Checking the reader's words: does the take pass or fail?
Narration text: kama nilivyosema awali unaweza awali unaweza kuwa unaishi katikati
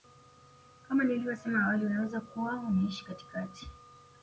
fail